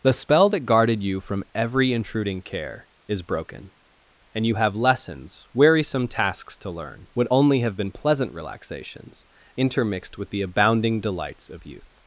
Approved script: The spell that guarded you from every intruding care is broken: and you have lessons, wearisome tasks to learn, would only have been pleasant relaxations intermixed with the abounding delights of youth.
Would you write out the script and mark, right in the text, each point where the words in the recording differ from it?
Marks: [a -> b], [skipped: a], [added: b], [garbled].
The spell that guarded you from every intruding care is broken: and you have lessons, wearisome tasks to learn, would only have been pleasant relaxations intermixed with the abounding delights of youth.